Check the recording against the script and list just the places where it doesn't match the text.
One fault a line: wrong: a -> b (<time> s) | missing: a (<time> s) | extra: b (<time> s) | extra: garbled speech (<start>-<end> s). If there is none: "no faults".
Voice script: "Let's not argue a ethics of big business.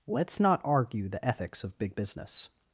wrong: a -> the (1.1 s)